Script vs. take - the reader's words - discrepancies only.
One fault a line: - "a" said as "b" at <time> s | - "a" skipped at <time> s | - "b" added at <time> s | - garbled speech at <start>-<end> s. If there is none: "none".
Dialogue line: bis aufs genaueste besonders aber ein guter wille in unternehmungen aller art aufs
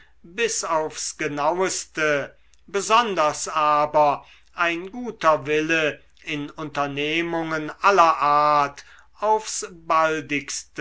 none